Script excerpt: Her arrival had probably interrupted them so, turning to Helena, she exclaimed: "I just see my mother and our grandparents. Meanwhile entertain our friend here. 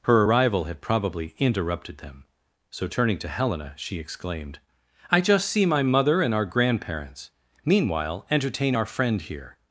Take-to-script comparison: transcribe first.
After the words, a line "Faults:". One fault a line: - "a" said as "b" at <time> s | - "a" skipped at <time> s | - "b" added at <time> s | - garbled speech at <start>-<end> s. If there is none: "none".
Her arrival had probably interrupted them so, turning to Helena, she exclaimed: "I just see my mother and our grandparents. Meanwhile entertain our friend here.
Faults:
none